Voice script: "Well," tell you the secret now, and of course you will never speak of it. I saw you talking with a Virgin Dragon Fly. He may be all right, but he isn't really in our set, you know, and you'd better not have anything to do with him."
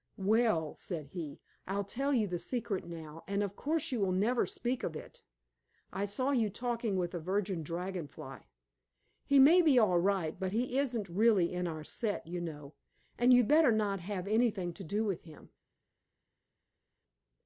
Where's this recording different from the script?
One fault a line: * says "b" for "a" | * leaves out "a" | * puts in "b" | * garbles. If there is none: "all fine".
* puts in "said he I'll"